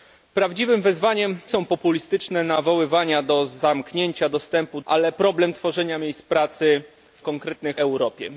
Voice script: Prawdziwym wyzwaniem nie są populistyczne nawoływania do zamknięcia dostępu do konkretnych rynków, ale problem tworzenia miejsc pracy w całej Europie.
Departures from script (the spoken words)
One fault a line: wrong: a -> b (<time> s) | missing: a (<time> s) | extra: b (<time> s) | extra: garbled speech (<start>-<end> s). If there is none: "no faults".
missing: nie (1.4 s)
missing: do konkretnych rynków (4.8 s)
wrong: całej -> konkretnych (7.2 s)